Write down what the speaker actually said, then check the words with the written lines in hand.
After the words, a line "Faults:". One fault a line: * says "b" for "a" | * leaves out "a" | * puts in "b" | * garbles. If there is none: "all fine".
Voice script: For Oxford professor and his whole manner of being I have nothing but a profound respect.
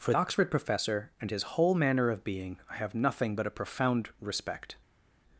For Oxford professor and his whole manner of being I have nothing but a profound respect.
Faults:
all fine